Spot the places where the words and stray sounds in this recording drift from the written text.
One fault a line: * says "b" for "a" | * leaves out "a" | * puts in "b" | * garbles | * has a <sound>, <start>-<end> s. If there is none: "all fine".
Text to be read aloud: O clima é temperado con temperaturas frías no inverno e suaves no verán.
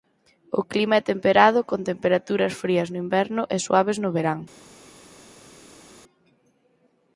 all fine